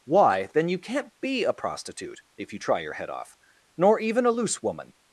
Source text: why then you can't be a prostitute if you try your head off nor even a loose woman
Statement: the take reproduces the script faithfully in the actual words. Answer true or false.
true